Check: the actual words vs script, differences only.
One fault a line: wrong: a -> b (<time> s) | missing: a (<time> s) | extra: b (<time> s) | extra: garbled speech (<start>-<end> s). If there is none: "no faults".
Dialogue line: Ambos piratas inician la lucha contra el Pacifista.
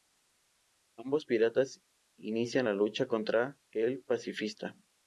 no faults